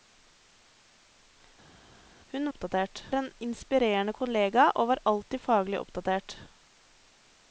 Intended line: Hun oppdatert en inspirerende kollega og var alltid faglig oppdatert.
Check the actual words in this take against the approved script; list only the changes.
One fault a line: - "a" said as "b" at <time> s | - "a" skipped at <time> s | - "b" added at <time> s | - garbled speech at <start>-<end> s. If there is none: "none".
none